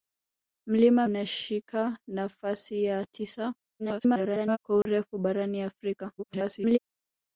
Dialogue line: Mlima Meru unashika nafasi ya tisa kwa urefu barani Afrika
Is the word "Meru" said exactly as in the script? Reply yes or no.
no